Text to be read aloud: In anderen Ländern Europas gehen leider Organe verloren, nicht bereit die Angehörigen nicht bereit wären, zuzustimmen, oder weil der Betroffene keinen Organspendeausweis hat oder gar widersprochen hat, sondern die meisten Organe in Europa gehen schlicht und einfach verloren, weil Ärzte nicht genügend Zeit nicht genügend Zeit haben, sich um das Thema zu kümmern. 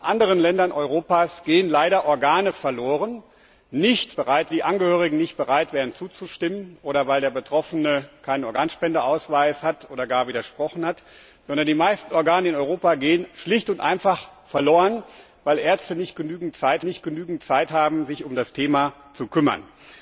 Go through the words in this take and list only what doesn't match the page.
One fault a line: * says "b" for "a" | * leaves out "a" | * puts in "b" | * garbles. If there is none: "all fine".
all fine